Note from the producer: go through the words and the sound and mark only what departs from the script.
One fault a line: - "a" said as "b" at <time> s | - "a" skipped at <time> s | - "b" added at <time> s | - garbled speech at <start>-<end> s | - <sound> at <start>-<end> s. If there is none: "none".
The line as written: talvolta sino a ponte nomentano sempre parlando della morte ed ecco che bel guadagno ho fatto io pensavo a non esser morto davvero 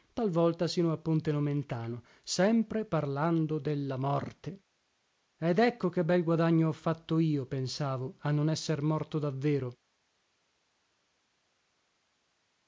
none